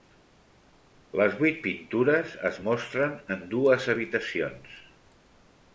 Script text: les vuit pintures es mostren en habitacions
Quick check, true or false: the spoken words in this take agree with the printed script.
false